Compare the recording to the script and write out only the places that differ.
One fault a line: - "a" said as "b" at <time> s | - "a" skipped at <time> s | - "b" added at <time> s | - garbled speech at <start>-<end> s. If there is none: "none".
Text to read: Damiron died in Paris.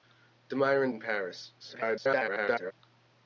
- "died" skipped at 0.9 s
- garbled speech at 1.6-2.7 s